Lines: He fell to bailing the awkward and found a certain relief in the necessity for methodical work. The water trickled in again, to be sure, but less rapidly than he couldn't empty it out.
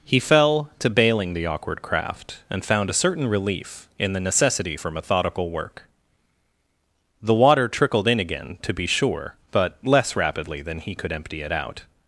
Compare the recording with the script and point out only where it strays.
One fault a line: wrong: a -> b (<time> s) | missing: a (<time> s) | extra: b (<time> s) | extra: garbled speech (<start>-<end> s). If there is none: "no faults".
extra: craft (1.8 s)
wrong: couldn't -> could (10.9 s)